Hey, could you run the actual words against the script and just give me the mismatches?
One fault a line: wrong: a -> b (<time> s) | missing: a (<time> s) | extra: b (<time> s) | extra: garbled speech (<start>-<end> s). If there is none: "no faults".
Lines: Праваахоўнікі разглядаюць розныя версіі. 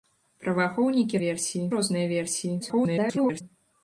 wrong: разглядаюць -> версіі (1.2 s)
extra: garbled speech (2.6-3.4 s)